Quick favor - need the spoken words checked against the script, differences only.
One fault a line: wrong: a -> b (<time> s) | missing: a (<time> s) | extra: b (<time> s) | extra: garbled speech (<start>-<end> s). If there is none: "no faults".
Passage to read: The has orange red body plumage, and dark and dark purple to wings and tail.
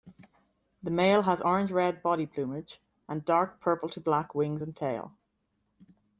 extra: male (0.9 s)
missing: and dark (3.6 s)
extra: black (4.0 s)